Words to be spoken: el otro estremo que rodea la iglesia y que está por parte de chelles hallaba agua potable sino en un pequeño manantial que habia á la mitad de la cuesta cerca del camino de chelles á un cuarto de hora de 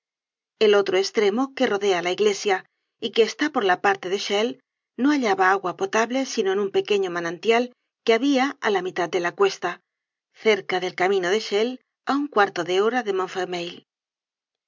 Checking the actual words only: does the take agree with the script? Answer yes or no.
no